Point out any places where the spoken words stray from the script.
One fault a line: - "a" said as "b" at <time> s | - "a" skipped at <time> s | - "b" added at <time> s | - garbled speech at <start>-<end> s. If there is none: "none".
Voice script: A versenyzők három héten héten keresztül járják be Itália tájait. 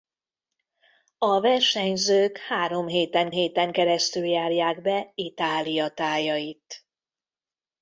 none